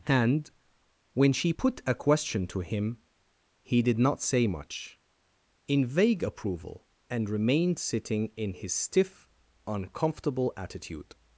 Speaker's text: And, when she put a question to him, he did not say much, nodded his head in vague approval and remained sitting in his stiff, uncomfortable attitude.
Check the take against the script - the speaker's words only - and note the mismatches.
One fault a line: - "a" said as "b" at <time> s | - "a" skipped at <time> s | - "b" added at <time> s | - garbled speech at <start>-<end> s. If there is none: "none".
- "nodded his head" skipped at 5.0 s